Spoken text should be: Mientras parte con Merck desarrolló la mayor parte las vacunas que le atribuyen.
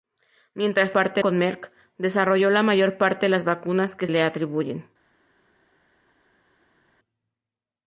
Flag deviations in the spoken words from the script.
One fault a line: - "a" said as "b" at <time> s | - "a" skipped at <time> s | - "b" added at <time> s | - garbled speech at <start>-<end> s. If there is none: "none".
none